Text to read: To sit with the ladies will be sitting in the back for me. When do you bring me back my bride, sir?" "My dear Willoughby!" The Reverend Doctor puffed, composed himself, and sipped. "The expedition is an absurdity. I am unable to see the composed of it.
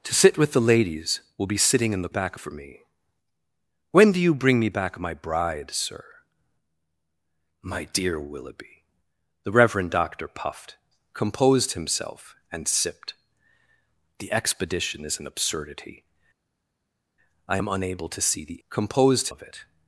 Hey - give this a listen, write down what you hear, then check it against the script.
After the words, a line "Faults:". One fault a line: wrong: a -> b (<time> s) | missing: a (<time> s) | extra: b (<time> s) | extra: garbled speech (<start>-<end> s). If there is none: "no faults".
To sit with the ladies will be sitting in the back for me. When do you bring me back my bride, sir?" "My dear Willoughby!" The Reverend Doctor puffed, composed himself, and sipped. "The expedition is an absurdity. I am unable to see the composed of it.
Faults:
no faults